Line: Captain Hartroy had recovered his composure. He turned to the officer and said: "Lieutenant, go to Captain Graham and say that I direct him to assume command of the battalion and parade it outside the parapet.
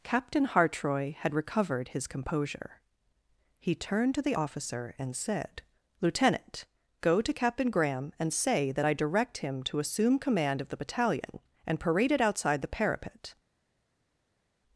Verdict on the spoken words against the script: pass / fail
pass